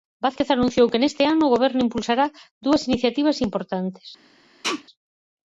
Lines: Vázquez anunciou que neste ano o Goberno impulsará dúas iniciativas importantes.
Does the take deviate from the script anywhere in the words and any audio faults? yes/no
yes